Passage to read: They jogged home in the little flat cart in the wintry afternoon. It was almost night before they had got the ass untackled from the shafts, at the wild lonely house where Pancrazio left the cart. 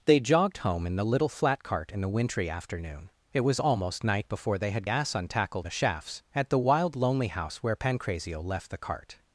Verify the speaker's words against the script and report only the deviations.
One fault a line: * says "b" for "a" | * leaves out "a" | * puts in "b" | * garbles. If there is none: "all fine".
* leaves out "got the"
* leaves out "from"